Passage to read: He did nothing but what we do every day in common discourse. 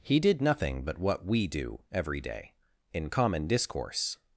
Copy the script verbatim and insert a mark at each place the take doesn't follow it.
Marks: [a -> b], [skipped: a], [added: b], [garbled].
He did nothing but what we do every day in common discourse.